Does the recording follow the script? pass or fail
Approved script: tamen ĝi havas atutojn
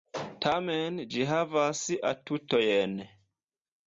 pass